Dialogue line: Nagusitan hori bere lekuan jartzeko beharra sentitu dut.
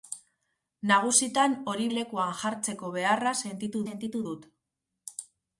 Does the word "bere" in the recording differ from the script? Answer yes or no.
yes